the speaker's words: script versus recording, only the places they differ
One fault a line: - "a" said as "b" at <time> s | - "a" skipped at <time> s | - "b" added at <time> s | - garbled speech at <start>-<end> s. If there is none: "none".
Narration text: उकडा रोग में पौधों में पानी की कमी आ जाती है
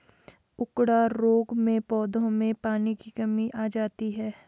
none